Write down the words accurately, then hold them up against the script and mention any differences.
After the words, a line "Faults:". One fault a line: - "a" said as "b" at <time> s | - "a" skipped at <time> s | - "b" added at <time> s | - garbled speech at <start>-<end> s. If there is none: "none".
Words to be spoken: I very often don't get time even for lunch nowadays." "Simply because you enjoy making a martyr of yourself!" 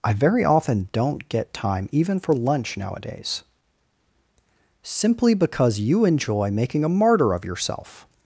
I very often don't get time even for lunch nowadays." "Simply because you enjoy making a martyr of yourself!"
Faults:
none